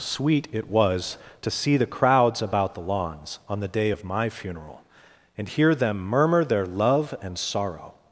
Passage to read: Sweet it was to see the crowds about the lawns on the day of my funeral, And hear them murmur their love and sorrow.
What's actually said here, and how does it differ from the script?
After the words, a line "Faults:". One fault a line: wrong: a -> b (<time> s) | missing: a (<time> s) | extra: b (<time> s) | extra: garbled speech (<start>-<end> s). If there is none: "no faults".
Sweet it was to see the crowds about the lawns on the day of my funeral, And hear them murmur their love and sorrow.
Faults:
no faults